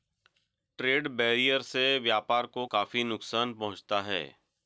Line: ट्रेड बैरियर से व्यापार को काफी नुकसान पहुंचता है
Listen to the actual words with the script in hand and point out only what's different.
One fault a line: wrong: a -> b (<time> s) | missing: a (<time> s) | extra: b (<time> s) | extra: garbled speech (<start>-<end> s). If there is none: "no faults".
no faults